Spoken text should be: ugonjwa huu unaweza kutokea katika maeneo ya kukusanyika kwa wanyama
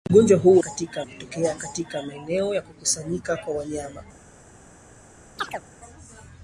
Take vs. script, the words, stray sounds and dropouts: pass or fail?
fail